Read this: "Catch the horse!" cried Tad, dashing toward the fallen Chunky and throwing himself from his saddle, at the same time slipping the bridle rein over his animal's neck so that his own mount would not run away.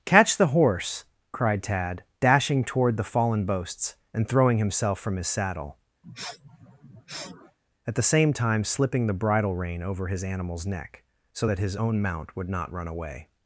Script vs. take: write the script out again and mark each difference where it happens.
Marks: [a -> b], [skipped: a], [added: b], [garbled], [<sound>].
"Catch the horse!" cried Tad, dashing toward the fallen [Chunky -> Boasts] and throwing himself from his saddle, [sniff] at the same time slipping the bridle rein over his animal's neck so that his own mount would not run away.